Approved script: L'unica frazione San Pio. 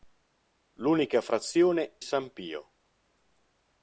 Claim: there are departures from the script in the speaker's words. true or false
false